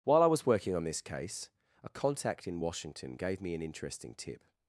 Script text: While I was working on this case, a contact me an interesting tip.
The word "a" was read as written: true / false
true